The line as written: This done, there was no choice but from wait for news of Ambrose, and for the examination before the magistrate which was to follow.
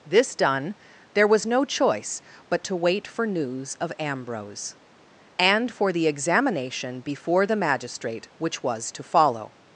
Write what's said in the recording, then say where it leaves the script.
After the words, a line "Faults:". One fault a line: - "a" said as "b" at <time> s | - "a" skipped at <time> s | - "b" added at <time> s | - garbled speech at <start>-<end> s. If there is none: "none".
This done, there was no choice but to wait for news of Ambrose, and for the examination before the magistrate which was to follow.
Faults:
- "from" said as "to" at 2.6 s